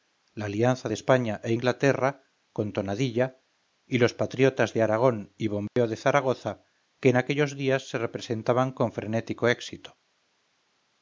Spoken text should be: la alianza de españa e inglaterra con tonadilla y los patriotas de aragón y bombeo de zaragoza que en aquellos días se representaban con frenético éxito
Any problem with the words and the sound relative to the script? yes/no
yes